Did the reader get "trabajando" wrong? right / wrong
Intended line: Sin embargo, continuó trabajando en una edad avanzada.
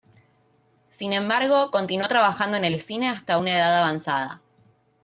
right